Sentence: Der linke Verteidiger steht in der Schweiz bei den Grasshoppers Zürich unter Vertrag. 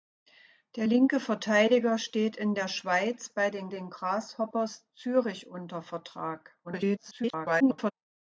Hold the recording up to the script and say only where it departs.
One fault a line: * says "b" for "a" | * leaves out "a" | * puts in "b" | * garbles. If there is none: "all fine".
* puts in "den"
* garbles